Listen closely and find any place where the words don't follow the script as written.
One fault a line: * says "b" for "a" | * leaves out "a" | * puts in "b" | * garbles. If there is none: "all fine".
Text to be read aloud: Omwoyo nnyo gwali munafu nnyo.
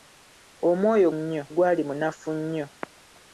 all fine